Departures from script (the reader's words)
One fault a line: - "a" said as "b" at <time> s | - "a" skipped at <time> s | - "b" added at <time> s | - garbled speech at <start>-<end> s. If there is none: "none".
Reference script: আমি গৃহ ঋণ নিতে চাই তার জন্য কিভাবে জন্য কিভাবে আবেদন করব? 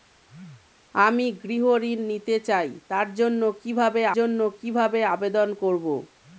none